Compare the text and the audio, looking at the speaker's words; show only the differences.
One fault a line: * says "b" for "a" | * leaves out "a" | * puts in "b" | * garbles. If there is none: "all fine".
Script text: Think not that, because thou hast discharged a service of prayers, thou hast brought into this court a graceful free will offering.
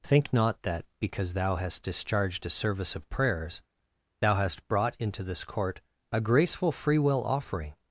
all fine